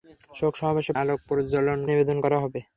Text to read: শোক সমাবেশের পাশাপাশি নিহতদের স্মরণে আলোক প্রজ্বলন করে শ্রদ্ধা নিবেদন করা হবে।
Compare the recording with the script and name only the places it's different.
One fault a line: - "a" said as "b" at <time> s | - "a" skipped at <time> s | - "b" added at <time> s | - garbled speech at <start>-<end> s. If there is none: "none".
- "পাশাপাশি নিহতদের স্মরণে" skipped at 1.0 s
- "করে শ্রদ্ধা" skipped at 1.8 s